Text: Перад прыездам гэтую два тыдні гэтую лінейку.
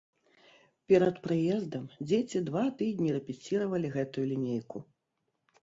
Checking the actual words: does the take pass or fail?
fail